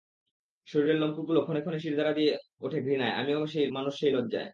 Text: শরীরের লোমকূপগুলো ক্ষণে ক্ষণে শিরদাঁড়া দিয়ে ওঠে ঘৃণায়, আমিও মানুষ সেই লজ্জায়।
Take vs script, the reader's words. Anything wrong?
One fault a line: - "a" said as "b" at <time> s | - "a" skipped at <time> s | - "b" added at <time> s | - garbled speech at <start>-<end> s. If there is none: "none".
none